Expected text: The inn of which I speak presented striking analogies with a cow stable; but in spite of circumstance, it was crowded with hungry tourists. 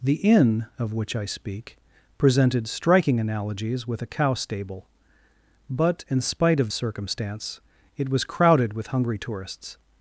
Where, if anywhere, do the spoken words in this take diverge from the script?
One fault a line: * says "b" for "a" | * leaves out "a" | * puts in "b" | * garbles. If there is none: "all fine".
all fine